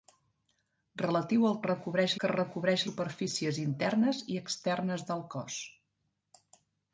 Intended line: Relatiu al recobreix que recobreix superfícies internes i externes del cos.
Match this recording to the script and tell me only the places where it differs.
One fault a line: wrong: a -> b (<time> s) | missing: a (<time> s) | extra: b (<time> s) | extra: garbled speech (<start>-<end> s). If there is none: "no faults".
no faults